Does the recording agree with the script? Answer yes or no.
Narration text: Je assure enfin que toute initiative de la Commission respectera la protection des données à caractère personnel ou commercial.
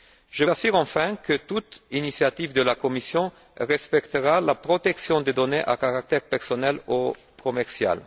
yes